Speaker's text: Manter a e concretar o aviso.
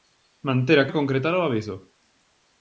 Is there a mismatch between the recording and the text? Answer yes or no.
no